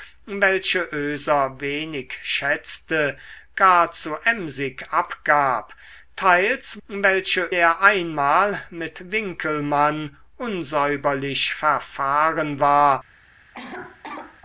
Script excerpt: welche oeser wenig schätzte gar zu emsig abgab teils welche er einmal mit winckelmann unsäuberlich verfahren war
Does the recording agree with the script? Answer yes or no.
yes